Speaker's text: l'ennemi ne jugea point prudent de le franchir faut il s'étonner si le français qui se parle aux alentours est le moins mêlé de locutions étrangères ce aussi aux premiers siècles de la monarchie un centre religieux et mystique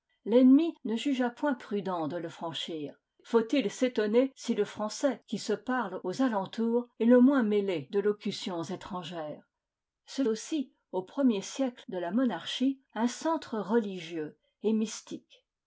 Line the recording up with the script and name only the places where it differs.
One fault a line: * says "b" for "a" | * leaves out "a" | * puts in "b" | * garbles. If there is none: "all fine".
all fine